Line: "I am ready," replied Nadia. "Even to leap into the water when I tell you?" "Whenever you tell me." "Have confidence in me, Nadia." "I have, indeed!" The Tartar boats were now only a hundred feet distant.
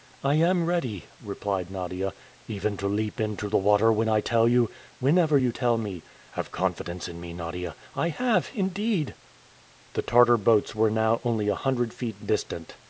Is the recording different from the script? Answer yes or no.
no